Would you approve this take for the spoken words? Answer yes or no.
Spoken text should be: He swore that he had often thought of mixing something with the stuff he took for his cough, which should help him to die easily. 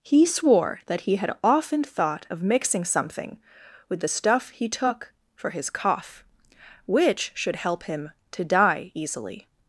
yes